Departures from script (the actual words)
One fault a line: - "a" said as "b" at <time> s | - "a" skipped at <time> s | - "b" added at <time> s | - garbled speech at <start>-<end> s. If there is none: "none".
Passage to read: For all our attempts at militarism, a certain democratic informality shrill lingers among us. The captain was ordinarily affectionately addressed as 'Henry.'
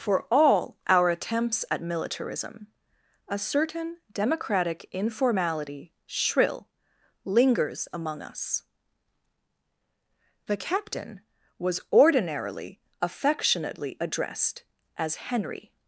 none